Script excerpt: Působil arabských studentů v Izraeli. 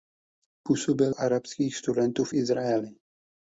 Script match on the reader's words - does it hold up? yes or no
yes